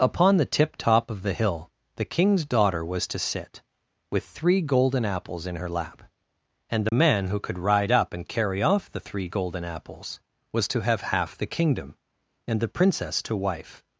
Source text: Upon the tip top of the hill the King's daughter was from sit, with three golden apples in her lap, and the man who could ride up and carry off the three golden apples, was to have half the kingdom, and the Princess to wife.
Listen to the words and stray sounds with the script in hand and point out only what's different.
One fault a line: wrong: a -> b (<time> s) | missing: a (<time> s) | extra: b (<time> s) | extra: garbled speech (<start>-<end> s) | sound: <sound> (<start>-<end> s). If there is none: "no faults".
wrong: from -> to (3.1 s)
sound: dropout (6.9-6.9 s)